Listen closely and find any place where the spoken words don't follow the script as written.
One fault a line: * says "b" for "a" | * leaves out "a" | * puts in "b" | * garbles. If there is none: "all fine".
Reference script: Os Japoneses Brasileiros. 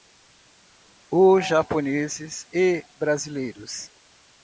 * puts in "e"